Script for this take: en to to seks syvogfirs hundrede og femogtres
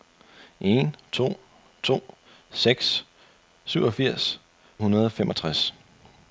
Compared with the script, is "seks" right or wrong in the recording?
right